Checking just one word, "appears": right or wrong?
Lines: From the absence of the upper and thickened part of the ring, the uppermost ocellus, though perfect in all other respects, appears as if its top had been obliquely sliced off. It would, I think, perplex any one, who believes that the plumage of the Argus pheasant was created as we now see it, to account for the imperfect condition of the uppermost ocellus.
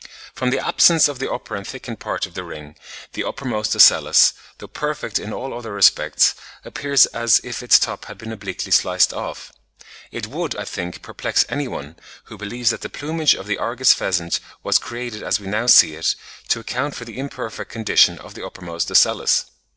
right